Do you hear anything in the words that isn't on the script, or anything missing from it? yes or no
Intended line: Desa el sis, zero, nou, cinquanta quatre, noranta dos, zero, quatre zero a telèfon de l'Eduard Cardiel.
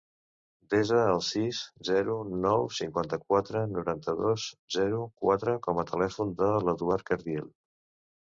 yes